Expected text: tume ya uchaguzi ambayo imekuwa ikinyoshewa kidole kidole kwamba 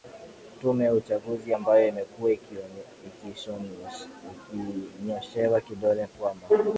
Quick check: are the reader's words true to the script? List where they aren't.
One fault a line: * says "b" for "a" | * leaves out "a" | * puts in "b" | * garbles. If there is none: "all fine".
* leaves out "kidole"